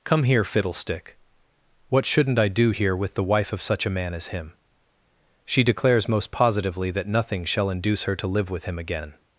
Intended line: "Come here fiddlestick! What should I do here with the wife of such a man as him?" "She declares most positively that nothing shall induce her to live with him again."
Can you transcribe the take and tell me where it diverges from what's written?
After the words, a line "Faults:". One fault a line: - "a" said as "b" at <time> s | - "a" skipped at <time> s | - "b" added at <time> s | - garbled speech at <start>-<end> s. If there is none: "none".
"Come here fiddlestick! What shouldn't I do here with the wife of such a man as him?" "She declares most positively that nothing shall induce her to live with him again."
Faults:
- "should" said as "shouldn't" at 2.0 s